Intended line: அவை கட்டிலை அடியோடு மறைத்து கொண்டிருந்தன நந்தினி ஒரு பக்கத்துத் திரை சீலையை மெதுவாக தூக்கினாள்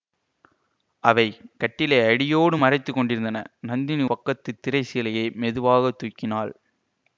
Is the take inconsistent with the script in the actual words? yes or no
yes